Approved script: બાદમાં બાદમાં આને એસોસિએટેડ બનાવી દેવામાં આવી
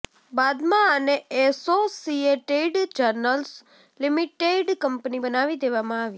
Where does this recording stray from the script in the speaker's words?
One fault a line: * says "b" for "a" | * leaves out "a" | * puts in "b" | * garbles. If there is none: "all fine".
* leaves out "બાદમાં"
* puts in "જર્નલ્સ લિમિટેડ કંપની"